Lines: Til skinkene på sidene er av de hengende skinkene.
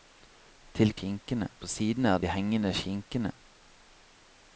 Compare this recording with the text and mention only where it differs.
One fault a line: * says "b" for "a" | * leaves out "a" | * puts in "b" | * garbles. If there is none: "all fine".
all fine